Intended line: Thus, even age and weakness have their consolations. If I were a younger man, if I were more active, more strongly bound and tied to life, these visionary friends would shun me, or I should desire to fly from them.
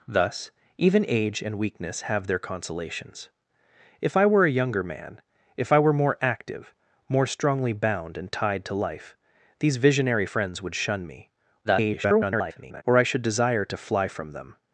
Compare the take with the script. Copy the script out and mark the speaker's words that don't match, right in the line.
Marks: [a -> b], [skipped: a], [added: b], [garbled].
Thus, even age and weakness have their consolations. If I were a younger man, if I were more active, more strongly bound and tied to life, these visionary friends would shun me, [garbled] or I should desire to fly from them.